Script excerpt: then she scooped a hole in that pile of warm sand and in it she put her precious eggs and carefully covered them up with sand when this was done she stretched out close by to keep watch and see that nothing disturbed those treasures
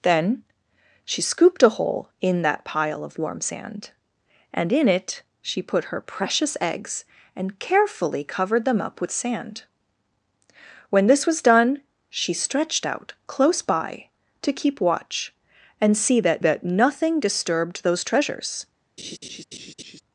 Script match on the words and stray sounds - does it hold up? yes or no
no